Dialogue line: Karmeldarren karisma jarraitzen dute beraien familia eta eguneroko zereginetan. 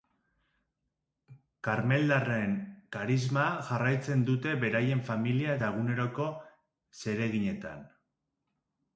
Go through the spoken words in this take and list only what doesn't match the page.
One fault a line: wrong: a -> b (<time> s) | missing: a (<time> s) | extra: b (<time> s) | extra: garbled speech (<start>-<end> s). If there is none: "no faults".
no faults